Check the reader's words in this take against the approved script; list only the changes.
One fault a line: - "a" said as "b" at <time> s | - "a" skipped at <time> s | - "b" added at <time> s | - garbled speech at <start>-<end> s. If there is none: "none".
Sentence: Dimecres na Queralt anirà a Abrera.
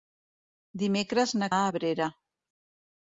- "Queralt anirà" skipped at 1.5 s